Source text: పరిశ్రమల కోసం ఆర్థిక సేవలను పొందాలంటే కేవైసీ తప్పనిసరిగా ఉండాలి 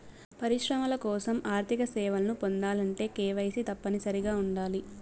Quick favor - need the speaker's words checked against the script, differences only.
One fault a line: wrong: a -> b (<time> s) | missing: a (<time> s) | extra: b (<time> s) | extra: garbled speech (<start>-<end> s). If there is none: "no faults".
no faults